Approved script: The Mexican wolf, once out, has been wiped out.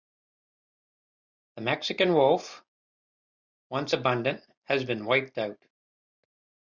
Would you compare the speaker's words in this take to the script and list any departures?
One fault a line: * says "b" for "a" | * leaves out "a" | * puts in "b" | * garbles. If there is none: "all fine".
* says "abundant" for "out"